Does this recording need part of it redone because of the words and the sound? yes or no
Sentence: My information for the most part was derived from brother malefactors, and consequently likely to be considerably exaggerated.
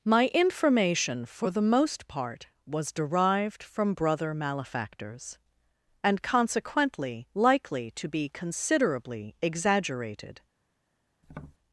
yes